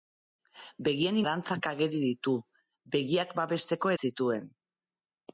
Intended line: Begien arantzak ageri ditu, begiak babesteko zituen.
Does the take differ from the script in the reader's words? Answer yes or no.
no